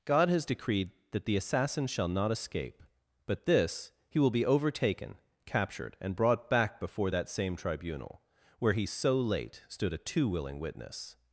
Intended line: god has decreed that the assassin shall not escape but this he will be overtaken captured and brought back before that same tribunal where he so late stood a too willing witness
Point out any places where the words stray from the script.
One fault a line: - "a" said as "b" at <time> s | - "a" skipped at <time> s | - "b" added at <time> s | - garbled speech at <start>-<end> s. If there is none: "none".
none